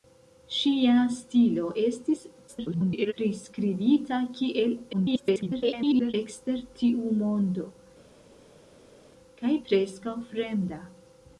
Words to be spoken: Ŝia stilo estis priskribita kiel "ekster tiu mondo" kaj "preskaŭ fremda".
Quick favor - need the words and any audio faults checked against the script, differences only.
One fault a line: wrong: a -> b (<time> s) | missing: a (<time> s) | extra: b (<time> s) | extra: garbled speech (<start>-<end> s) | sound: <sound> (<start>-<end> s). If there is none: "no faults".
extra: garbled speech (2.5-3.1 s)
extra: garbled speech (4.9-6.1 s)